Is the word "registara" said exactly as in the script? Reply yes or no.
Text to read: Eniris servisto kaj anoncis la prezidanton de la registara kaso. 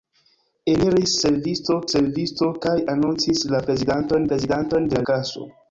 no